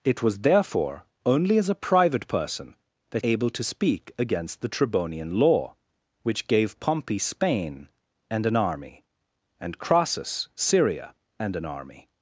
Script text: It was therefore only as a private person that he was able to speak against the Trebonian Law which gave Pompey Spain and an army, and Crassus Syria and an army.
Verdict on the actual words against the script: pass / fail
fail